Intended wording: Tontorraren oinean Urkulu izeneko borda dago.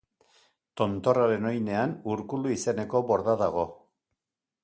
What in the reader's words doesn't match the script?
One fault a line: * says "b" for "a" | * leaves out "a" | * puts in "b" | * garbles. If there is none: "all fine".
all fine